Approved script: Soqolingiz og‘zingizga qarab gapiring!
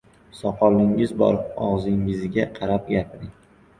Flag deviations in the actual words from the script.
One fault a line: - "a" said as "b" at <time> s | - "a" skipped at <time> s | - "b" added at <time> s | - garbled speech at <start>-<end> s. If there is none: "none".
- "bor" added at 1.2 s